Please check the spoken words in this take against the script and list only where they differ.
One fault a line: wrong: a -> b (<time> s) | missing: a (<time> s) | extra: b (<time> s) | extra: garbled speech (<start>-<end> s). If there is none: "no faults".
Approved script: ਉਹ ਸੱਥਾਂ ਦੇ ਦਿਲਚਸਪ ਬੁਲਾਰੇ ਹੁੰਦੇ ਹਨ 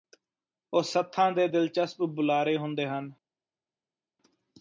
no faults